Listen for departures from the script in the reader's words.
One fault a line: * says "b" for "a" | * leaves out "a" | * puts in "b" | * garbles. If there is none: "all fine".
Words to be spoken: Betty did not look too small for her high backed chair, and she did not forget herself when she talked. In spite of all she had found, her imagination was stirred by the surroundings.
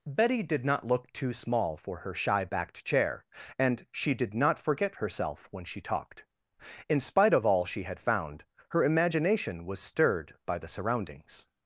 * says "shy" for "high"